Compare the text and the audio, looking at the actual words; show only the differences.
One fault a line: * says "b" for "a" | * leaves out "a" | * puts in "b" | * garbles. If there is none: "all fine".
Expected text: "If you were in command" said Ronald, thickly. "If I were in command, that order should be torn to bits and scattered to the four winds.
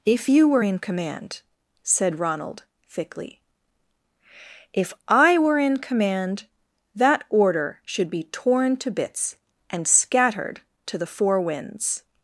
all fine